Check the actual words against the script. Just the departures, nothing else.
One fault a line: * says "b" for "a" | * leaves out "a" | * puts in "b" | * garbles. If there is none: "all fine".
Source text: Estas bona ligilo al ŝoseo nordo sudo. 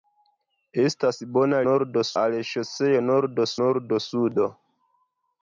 * says "nordo" for "ligilo"
* puts in "nordo"